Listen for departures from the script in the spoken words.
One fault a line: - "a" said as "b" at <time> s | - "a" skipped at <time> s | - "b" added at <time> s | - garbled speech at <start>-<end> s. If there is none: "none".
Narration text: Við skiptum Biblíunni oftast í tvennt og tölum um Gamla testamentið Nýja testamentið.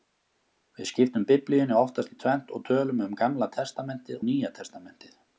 none